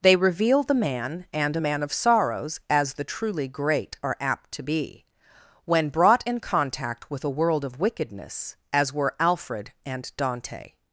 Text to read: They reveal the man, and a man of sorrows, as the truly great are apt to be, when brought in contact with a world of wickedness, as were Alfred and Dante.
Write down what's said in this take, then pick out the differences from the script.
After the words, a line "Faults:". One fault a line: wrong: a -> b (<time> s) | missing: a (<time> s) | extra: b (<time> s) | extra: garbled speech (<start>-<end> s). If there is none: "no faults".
They reveal the man, and a man of sorrows, as the truly great are apt to be, when brought in contact with a world of wickedness, as were Alfred and Dante.
Faults:
no faults